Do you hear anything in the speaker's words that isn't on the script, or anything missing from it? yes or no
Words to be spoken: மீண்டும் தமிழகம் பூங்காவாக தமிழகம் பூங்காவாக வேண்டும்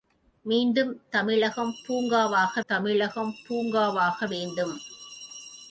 no